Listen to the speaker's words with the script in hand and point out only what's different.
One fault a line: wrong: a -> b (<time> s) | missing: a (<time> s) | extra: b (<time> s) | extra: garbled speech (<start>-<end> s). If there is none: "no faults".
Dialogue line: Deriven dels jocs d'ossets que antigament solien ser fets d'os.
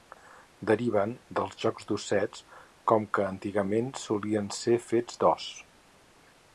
extra: com (2.9 s)